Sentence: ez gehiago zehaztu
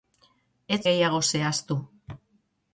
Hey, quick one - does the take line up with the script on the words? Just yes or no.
yes